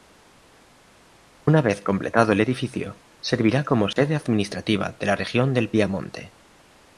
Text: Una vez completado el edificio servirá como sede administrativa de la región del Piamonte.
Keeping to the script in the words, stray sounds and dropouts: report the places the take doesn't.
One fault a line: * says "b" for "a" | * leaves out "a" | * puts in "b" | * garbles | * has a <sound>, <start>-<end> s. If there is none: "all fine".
* has a dropout, 3.9-4.0 s